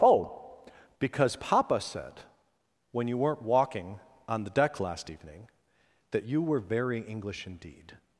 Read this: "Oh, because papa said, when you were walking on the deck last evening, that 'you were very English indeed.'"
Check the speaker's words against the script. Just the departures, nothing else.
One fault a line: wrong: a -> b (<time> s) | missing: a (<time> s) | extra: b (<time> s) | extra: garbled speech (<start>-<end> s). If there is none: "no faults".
wrong: were -> weren't (3.2 s)